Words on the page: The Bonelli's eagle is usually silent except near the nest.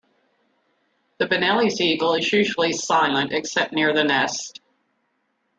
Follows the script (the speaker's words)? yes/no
yes